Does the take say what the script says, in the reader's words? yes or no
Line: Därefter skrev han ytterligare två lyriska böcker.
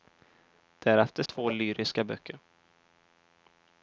no